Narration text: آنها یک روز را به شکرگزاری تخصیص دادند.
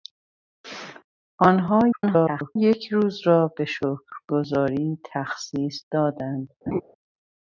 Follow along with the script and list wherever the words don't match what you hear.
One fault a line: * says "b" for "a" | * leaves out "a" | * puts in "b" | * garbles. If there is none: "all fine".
* garbles